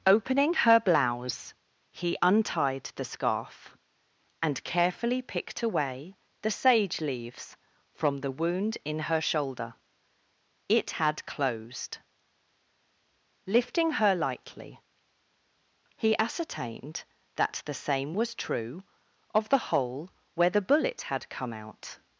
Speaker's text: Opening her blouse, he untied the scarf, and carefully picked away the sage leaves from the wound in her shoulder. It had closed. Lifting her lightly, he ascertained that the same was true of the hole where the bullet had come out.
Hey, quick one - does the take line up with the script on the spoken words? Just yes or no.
yes